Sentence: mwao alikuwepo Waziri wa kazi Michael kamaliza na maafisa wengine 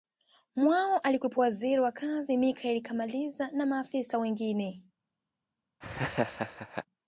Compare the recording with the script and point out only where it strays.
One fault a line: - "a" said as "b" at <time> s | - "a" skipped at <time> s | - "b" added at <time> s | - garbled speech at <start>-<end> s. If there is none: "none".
none